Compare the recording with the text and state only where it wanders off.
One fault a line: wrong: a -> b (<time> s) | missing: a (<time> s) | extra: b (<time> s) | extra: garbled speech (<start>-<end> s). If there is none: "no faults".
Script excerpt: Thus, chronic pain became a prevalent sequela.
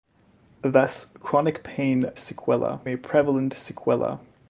wrong: became -> sequela (2.1 s)